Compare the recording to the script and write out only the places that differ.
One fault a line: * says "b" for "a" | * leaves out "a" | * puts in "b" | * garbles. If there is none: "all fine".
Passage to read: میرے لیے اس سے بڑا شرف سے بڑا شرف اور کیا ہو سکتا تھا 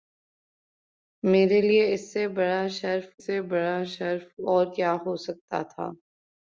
all fine